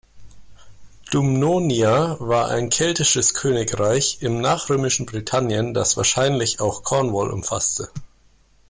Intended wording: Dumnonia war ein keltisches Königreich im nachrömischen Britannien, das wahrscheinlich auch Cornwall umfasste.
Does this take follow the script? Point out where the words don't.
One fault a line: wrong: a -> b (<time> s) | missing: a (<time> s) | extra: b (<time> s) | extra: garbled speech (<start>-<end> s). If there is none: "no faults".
no faults